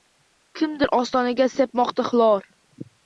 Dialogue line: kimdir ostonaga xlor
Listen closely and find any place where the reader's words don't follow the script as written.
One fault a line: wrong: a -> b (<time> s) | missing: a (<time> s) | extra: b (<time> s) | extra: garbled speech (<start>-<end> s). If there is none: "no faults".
extra: sepmoqda (1.6 s)